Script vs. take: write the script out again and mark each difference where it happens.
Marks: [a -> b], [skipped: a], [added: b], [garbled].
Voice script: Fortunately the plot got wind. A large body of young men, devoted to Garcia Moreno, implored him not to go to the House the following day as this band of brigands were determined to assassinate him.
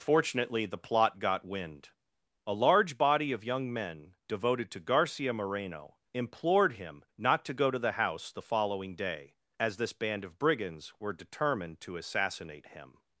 Fortunately the plot got wind. A large body of young men, devoted to Garcia Moreno, implored him not to go to the House the following day as this band of brigands were determined to assassinate him.